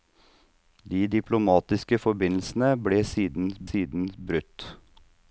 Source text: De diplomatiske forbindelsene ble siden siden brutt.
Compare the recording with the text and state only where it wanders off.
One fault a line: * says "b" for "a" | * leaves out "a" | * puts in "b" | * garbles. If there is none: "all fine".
all fine